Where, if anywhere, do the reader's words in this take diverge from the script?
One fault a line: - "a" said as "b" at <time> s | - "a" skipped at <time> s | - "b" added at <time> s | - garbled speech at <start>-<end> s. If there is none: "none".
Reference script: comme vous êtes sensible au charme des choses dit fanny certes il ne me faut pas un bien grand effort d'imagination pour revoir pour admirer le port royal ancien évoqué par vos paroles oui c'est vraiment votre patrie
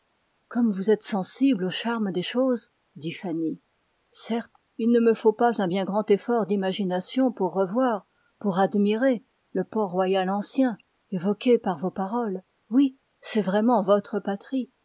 none